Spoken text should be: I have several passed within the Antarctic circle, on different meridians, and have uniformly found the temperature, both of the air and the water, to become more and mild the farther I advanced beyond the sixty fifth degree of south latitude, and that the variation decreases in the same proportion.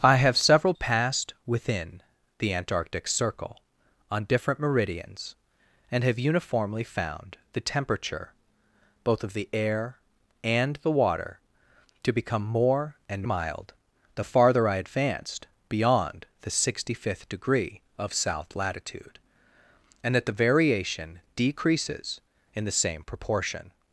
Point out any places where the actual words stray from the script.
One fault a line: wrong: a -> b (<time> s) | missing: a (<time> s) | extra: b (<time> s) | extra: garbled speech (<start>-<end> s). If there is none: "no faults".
no faults